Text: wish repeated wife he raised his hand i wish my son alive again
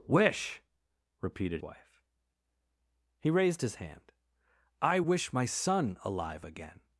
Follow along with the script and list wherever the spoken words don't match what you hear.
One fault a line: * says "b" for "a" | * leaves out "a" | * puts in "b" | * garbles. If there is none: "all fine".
all fine